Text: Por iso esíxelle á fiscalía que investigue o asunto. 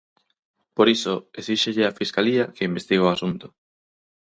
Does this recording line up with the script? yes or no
yes